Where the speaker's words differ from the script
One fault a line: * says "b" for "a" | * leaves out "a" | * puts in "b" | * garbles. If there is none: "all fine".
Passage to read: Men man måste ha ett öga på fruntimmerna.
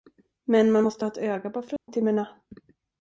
all fine